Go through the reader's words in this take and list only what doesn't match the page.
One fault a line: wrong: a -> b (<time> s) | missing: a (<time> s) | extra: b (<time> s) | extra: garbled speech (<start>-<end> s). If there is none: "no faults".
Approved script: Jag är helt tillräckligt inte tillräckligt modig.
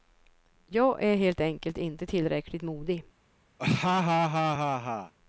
wrong: tillräckligt -> enkelt (1.4 s)